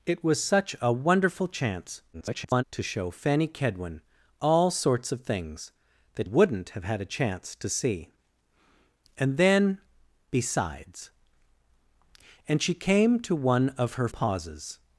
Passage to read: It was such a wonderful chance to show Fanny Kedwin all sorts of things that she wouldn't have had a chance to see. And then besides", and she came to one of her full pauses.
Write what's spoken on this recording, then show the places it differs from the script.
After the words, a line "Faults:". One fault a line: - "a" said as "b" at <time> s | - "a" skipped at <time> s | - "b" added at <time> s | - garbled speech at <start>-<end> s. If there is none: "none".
It was such a wonderful chance [garbled] to show Fanny Kedwin all sorts of things that wouldn't have had a chance to see. And then besides", and she came to one of her pauses.
Faults:
- garbled speech at 2.1-2.6 s
- "she" skipped at 6.3 s
- "full" skipped at 14.1 s